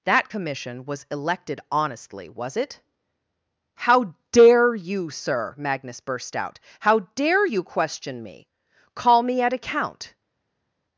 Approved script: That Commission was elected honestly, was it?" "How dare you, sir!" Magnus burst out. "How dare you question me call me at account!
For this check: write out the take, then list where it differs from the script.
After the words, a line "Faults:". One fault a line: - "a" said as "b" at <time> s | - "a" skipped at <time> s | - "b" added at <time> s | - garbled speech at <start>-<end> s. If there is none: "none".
That Commission was elected honestly, was it?" "How dare you, sir!" Magnus burst out. "How dare you question me call me at account!
Faults:
none